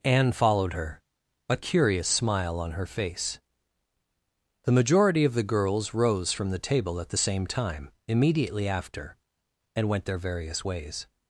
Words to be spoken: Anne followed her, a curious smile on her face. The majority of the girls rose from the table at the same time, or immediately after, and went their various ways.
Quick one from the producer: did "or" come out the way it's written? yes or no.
no